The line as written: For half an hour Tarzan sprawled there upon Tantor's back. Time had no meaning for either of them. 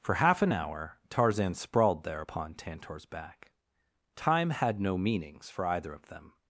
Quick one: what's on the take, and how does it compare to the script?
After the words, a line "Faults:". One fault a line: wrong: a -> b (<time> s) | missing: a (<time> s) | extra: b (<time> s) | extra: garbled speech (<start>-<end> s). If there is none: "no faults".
For half an hour Tarzan sprawled there upon Tantor's back. Time had no meanings for either of them.
Faults:
wrong: meaning -> meanings (5.0 s)